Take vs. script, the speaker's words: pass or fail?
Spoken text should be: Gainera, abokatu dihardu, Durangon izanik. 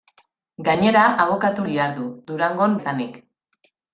pass